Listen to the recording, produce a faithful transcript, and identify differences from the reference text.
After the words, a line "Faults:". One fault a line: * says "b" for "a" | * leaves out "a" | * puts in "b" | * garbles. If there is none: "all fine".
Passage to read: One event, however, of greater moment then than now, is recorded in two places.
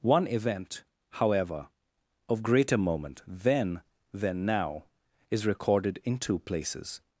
One event, however, of greater moment then than now, is recorded in two places.
Faults:
all fine